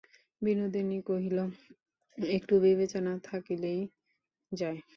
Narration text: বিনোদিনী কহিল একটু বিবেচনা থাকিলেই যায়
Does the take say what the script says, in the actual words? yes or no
yes